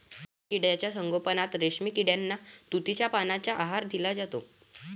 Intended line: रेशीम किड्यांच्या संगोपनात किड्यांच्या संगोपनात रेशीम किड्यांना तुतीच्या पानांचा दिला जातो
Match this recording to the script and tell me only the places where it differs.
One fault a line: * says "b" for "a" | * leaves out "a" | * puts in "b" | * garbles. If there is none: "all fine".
* leaves out "किड्यांच्या संगोपनात"
* puts in "आहार"